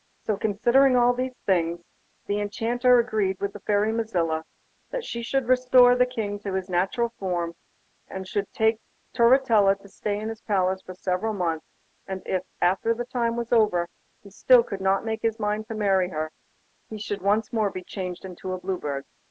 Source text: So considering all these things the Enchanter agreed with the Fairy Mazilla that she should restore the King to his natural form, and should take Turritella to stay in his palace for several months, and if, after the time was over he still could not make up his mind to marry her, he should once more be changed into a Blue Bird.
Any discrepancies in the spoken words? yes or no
no